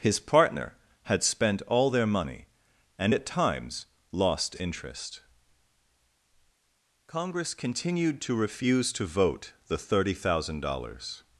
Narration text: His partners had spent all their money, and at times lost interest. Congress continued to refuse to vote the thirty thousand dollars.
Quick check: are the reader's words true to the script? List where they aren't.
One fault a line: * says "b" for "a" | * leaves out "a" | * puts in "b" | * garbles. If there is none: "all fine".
* says "partner" for "partners"